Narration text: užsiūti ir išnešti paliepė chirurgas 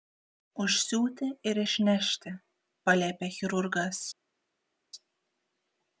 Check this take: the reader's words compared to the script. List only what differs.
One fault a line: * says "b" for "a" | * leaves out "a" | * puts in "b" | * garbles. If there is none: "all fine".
all fine